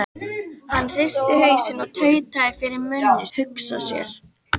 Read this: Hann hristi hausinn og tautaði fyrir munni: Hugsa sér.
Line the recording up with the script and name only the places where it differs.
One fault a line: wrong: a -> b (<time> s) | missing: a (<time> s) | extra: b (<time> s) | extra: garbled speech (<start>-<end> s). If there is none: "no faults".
no faults